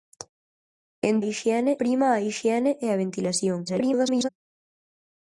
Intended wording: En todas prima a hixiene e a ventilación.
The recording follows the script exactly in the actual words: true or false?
false